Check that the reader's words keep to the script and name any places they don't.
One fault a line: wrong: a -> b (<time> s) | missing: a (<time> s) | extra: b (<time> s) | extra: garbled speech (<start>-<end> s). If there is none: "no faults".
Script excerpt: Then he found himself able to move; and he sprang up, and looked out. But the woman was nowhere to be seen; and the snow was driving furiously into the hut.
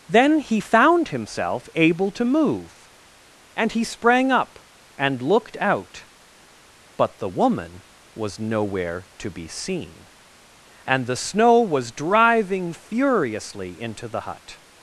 no faults